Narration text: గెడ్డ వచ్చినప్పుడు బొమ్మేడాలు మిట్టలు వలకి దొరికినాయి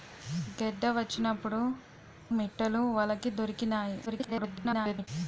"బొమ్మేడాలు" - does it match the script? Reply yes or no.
no